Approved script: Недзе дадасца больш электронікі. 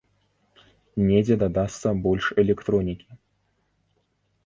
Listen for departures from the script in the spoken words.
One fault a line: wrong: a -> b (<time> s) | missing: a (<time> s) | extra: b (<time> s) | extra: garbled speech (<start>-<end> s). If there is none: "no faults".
no faults